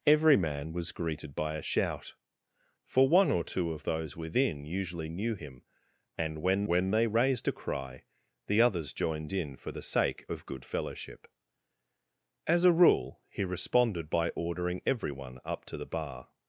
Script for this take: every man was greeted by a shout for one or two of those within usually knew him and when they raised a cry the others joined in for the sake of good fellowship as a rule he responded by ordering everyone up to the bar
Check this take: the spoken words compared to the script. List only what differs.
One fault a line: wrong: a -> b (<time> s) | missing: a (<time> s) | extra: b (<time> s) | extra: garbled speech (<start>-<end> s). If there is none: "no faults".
extra: when (6.7 s)